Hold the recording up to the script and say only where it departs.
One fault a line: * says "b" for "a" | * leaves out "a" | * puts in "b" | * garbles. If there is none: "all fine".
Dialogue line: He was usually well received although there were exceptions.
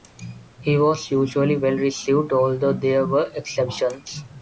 all fine